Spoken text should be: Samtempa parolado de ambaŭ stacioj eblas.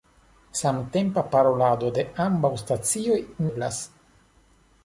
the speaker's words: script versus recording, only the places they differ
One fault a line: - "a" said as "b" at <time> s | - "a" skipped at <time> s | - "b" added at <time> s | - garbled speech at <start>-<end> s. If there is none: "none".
none